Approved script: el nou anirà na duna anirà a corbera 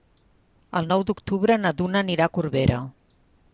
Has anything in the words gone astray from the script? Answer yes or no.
yes